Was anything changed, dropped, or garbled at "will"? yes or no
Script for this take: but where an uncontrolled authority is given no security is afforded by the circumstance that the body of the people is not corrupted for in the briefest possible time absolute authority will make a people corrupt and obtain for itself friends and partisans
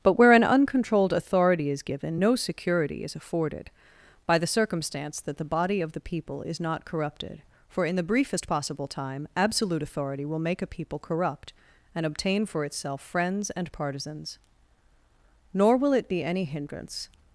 no